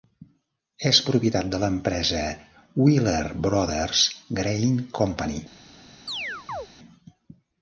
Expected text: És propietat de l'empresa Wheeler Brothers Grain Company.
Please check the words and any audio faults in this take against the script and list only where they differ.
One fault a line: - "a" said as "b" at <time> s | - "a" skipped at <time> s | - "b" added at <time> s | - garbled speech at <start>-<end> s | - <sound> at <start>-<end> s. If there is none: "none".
- chirp at 6.1-6.7 s